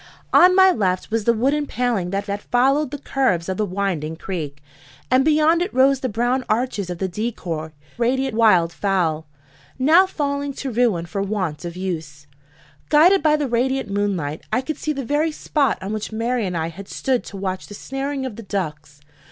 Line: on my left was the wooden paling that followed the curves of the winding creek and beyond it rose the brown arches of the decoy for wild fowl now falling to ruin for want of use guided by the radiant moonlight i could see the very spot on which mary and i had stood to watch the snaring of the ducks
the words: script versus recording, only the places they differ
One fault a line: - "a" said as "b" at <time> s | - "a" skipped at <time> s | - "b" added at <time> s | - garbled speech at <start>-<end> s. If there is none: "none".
- "that" added at 2.2 s
- "for" said as "radiant" at 8.0 s